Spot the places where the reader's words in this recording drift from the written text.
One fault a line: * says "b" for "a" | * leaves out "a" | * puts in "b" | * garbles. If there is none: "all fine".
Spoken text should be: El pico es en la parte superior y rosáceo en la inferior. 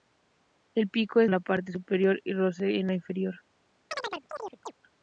all fine